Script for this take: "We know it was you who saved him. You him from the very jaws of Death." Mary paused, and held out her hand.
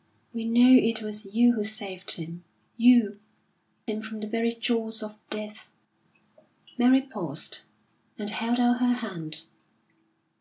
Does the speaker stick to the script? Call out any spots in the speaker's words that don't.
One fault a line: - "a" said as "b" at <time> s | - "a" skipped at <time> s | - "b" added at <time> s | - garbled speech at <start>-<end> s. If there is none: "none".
none